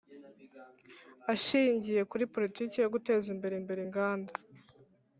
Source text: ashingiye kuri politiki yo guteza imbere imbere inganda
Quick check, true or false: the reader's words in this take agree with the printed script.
true